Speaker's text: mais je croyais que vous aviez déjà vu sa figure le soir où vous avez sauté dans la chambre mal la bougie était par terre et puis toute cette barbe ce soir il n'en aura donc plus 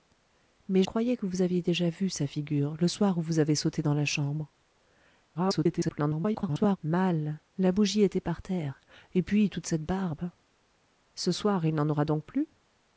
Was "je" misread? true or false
true